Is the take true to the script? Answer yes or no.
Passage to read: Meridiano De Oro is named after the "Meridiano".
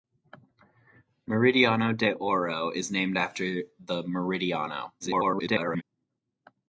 no